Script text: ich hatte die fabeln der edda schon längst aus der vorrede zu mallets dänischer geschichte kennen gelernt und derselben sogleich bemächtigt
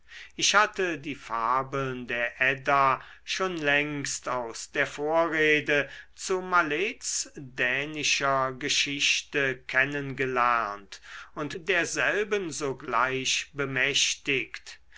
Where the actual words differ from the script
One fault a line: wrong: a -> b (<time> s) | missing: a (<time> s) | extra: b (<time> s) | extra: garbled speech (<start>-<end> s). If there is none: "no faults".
no faults